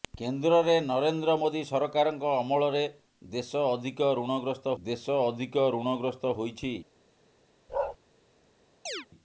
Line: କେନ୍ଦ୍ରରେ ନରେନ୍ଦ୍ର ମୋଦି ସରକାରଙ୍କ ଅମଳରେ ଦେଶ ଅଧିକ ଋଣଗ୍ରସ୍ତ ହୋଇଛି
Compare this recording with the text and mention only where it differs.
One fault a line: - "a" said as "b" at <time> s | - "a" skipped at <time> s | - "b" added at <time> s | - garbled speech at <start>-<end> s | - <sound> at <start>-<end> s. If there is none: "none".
- "ଦେଶ ଅଧିକ ଋଣଗ୍ରସ୍ତ" added at 4.8 s
- bark at 7.7-8.0 s
- chirp at 8.9-9.1 s